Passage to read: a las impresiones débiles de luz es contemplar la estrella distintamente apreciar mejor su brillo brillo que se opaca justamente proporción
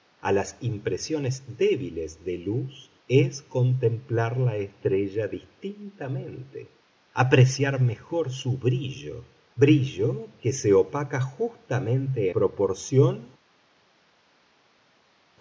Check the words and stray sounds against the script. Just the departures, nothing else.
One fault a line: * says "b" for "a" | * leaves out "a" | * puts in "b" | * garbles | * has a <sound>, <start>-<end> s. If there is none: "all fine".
all fine